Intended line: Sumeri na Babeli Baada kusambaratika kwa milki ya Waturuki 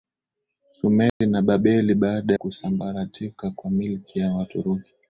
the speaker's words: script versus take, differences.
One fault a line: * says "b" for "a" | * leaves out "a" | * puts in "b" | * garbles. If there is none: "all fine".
all fine